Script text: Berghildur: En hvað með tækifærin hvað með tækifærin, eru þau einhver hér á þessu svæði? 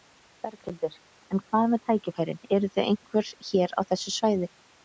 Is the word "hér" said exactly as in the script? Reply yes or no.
yes